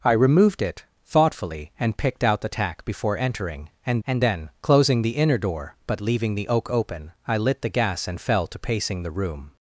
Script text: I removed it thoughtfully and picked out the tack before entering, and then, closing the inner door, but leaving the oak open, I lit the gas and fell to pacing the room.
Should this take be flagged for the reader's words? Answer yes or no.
yes